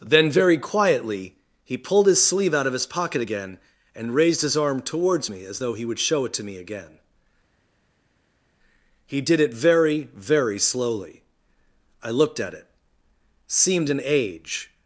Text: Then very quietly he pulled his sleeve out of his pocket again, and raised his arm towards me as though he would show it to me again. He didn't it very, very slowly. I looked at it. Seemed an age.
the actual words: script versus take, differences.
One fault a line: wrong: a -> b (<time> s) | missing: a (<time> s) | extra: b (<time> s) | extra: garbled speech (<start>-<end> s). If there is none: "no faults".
wrong: didn't -> did (9.2 s)